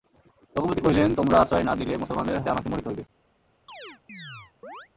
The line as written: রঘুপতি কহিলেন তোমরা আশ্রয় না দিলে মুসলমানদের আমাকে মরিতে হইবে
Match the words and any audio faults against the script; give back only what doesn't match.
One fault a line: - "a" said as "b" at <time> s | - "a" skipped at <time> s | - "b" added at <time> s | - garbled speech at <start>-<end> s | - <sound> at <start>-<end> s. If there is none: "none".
- chirp at 3.7-4.9 s